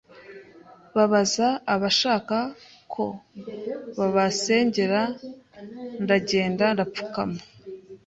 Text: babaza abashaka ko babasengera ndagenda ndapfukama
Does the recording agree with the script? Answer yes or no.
yes